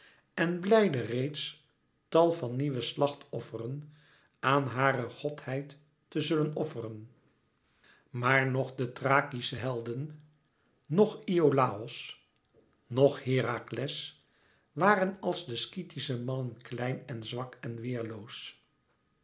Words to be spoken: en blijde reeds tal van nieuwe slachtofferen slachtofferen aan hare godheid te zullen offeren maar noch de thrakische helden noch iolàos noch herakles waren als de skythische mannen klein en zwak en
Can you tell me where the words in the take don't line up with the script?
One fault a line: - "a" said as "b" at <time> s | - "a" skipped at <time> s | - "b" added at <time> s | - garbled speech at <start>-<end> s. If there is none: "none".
- "slachtofferen" skipped at 3.9 s